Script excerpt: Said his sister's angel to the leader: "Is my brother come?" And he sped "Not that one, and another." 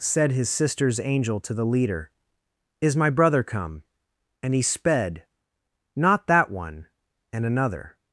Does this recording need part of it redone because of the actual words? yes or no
no